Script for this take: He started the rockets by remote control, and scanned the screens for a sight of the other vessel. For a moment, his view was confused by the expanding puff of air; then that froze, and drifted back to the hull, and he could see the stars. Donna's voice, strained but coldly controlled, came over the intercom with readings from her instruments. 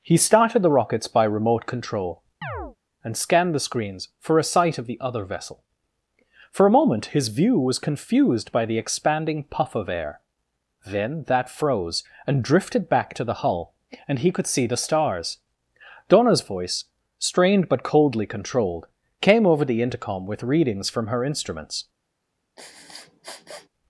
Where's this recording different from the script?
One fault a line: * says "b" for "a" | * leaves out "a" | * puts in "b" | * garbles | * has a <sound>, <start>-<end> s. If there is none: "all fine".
* has a chirp, 2.4-2.8 s
* has a sniff, 22.6-23.7 s